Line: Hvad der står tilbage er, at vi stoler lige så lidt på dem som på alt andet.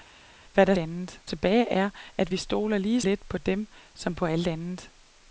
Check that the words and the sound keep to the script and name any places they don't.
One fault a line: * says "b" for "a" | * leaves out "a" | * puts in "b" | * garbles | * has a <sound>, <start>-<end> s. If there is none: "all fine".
* says "andet" for "står"
* leaves out "så"